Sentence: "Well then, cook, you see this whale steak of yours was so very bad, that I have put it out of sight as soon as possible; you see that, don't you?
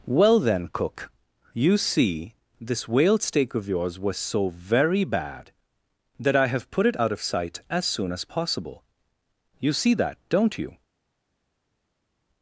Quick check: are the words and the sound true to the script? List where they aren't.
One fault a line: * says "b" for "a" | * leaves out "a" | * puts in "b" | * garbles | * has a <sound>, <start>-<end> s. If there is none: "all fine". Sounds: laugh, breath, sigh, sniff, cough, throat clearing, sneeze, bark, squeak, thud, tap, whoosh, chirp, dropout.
all fine